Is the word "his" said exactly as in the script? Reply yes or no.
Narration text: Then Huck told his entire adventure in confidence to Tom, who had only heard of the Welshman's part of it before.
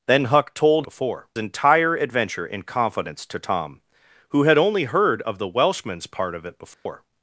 no